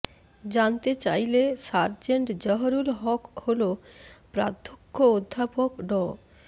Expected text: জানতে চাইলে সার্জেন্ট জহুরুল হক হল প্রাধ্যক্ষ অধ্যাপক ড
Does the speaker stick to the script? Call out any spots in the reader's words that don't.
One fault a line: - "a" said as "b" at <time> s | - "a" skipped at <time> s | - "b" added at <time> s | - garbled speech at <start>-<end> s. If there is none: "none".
none